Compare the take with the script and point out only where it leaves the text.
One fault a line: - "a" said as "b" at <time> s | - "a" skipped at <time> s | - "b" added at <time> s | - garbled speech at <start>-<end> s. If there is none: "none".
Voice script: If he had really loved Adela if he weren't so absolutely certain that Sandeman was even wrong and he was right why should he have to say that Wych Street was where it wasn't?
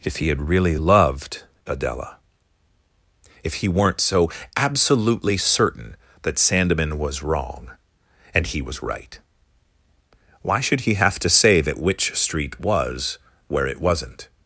- "even" skipped at 7.2 s